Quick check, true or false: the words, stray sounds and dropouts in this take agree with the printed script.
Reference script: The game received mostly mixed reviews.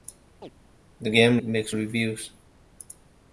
false